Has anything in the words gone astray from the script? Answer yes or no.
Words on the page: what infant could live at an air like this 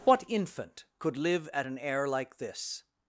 no